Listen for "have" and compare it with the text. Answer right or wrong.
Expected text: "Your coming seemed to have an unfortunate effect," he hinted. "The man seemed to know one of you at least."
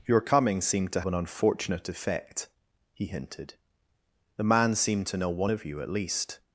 wrong